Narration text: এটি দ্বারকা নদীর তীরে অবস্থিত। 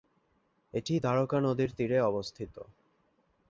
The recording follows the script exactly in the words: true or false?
true